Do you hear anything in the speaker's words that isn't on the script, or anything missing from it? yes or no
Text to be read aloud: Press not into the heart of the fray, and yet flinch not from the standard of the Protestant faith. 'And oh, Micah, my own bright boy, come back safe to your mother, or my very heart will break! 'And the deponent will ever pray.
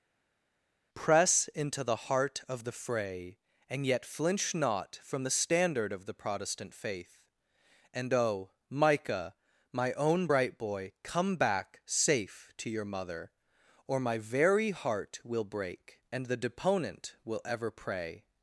yes